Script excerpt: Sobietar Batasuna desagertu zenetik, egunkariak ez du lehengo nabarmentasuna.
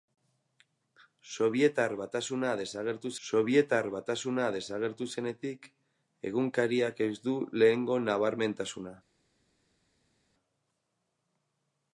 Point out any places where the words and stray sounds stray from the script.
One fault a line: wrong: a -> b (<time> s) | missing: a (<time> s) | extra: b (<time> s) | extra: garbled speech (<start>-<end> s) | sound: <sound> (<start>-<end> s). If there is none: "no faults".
extra: sobietar Batasuna desagertu (3.3 s)